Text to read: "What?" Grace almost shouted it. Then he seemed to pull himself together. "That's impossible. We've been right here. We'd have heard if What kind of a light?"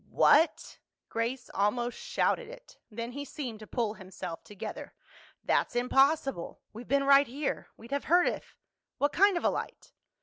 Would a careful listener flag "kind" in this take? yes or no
no